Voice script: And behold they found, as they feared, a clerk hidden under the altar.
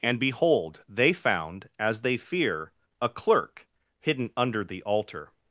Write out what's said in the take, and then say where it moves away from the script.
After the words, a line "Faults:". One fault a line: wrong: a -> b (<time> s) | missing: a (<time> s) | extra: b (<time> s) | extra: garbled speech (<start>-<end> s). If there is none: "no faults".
And behold they found, as they fear, a clerk hidden under the altar.
Faults:
wrong: feared -> fear (2.2 s)